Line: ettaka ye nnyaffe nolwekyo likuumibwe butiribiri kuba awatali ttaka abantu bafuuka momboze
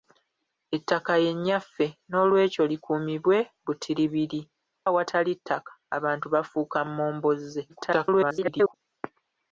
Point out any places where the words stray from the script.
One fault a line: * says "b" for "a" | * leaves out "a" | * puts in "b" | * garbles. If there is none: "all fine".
* leaves out "kuba"
* garbles